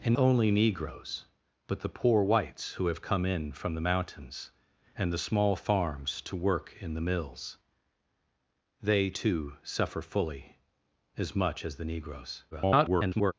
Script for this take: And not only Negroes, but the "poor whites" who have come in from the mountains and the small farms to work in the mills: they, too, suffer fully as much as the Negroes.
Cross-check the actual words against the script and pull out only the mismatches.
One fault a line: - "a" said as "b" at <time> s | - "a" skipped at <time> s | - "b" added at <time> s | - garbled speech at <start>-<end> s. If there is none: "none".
- "not" skipped at 0.1 s
- garbled speech at 12.5-13.3 s